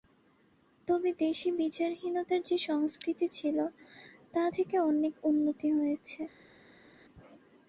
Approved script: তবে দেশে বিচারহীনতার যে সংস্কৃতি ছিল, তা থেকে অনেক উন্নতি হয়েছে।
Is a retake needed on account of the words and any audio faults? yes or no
no